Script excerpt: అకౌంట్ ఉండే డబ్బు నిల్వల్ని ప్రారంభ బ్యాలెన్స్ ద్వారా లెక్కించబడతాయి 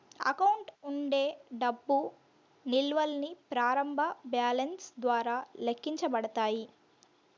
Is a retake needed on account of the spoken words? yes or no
no